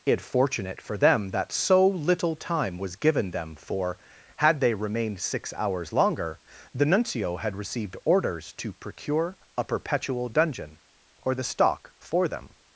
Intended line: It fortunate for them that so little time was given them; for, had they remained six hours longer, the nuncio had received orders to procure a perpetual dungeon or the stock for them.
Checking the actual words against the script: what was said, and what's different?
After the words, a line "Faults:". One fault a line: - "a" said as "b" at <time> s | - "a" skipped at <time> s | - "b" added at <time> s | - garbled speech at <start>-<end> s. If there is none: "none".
It fortunate for them that so little time was given them; for, had they remained six hours longer, the nuncio had received orders to procure a perpetual dungeon or the stock for them.
Faults:
none